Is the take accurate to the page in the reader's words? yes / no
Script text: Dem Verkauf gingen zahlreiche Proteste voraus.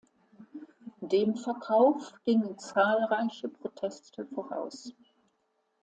yes